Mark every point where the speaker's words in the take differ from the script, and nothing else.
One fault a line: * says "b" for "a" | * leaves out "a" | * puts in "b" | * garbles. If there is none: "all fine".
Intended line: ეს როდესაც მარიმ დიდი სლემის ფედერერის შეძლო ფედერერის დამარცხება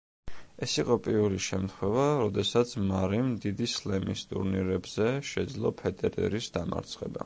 * puts in "იყო პირველი შემთხვევა"
* says "ტურნირებზე" for "ფედერერის"